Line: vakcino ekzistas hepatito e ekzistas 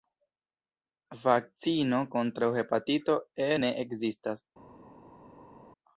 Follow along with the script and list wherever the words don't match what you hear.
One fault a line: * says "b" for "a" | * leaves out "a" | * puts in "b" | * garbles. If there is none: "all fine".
* says "kontraŭ" for "ekzistas"
* puts in "ne"